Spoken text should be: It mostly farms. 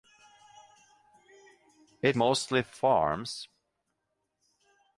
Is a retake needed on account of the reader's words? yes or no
no